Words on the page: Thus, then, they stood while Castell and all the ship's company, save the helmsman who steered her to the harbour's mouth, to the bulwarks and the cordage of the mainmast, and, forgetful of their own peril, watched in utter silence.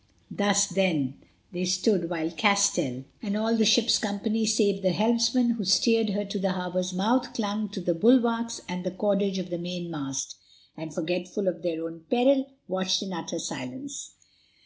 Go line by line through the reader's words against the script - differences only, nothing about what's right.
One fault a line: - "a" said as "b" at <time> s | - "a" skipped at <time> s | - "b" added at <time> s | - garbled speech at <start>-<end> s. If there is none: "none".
- "clung" added at 7.3 s